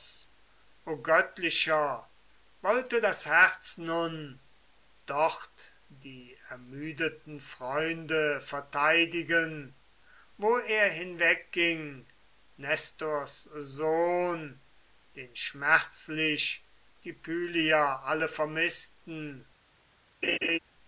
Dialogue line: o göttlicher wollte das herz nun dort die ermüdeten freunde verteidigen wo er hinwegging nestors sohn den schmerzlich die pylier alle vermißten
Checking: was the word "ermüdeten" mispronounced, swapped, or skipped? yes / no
no